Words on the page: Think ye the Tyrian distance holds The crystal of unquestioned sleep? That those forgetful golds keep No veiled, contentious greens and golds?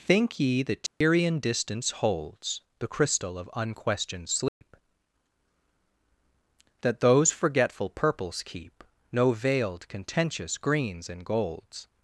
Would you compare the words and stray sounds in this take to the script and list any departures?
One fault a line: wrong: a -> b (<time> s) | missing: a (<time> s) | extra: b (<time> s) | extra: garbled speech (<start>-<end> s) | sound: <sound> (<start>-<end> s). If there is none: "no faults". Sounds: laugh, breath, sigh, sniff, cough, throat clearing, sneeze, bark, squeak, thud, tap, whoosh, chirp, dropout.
sound: dropout (0.9-1.0 s)
sound: dropout (4.5-4.6 s)
wrong: golds -> purples (7.9 s)